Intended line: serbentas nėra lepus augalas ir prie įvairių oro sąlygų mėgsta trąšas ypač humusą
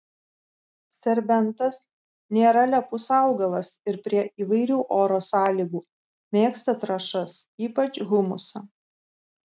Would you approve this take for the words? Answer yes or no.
yes